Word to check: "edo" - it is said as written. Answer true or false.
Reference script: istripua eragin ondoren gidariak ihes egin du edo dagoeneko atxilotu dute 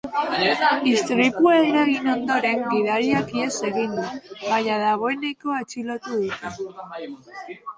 false